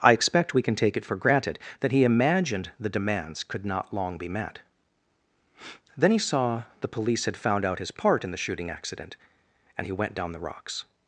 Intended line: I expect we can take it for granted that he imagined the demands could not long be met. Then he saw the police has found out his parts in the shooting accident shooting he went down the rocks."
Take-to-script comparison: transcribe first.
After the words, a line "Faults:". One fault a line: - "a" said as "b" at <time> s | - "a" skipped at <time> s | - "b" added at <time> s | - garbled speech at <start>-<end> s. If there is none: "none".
I expect we can take it for granted that he imagined the demands could not long be met. Then he saw the police had found out his part in the shooting accident and he went down the rocks."
Faults:
- "has" said as "had" at 7.2 s
- "parts" said as "part" at 7.9 s
- "shooting" said as "and" at 9.8 s